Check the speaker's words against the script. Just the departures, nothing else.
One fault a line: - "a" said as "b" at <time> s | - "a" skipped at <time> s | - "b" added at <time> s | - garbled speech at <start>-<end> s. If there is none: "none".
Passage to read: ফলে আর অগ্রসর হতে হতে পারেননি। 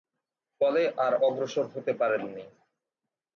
- "হতে" skipped at 1.9 s